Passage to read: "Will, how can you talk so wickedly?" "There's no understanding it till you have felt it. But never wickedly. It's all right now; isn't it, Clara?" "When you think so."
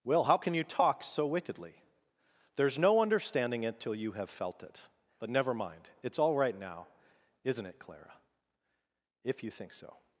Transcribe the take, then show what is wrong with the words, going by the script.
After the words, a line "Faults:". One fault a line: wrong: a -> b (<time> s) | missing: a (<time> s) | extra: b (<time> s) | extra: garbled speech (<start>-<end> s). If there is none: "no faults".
"Will, how can you talk so wickedly?" "There's no understanding it till you have felt it. But never mind. It's all right now; isn't it, Clara?" "If you think so."
Faults:
wrong: wickedly -> mind (5.5 s)
wrong: When -> If (9.2 s)